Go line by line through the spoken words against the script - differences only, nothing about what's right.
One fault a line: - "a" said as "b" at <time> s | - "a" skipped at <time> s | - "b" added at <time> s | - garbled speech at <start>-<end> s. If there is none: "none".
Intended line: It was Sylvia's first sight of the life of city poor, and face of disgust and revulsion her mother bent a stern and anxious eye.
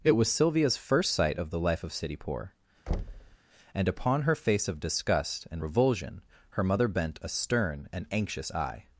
- "upon her" added at 3.9 s